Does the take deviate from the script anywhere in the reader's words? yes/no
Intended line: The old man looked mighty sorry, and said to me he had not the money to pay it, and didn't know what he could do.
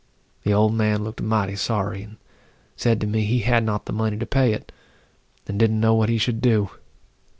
yes